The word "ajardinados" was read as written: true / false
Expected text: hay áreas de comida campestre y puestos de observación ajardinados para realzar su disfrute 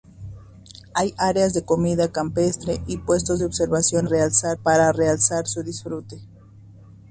false